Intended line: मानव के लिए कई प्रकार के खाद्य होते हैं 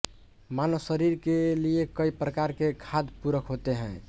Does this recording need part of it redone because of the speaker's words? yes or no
yes